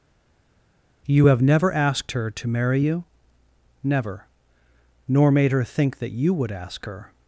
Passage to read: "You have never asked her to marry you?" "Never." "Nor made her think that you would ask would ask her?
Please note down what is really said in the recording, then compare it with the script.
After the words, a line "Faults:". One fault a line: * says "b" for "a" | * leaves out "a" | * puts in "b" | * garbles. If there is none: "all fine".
"You have never asked her to marry you?" "Never." "Nor made her think that you would ask her?
Faults:
* leaves out "would ask"